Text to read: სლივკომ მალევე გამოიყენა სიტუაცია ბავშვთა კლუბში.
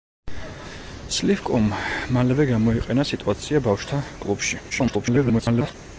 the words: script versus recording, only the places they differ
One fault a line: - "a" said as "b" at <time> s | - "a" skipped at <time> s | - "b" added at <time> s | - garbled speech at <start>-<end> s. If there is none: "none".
- garbled speech at 4.7-5.7 s